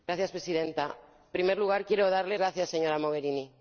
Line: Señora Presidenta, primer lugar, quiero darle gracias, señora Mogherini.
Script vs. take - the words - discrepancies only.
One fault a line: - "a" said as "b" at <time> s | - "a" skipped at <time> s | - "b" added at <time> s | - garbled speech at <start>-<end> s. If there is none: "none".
none